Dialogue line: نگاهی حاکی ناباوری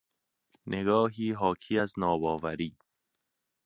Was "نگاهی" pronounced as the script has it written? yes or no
yes